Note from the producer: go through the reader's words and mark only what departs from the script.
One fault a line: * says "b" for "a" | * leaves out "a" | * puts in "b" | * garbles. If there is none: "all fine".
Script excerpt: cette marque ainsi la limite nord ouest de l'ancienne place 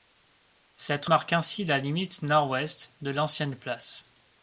all fine